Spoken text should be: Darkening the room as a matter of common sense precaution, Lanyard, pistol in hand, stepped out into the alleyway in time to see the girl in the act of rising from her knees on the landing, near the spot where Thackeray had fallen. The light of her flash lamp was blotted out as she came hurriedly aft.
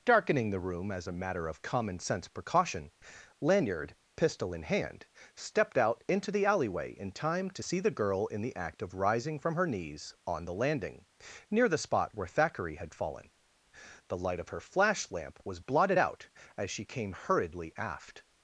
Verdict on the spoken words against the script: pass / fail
pass